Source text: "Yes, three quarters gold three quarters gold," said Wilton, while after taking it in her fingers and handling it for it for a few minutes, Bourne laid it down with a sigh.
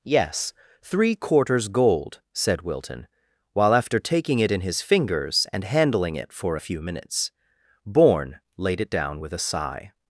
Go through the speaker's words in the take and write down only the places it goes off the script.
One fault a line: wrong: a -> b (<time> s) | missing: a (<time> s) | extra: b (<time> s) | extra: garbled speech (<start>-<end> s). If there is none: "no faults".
missing: three quarters gold (2.2 s)
wrong: her -> his (4.6 s)
missing: it for (6.6 s)